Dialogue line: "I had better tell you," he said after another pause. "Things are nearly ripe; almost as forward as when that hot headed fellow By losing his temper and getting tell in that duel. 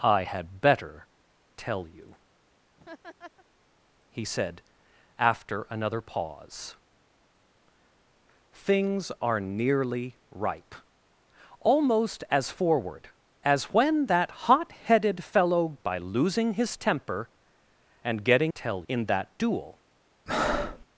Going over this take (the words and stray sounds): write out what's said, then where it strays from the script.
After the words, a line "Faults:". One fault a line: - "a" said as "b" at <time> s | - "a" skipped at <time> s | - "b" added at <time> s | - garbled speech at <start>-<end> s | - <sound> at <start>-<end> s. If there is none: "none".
"I had better tell you," he said after another pause. "Things are nearly ripe; almost as forward as when that hot headed fellow By losing his temper and getting tell in that duel.
Faults:
- laugh at 2.8-3.5 s
- breath at 20.3-20.8 s